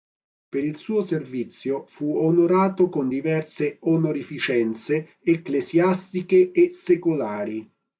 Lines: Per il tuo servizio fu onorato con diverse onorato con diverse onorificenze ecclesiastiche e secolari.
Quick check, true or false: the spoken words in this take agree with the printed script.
false